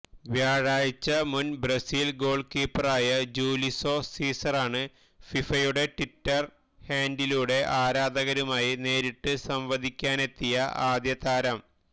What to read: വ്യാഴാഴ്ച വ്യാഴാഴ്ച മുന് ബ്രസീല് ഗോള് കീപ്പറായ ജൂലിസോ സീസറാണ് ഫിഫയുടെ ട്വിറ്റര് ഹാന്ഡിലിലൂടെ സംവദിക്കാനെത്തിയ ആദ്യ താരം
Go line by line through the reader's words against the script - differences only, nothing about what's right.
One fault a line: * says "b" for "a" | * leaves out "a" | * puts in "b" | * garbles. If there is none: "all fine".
* leaves out "വ്യാഴാഴ്ച"
* puts in "ആരാധകരുമായി നേരിട്ട്"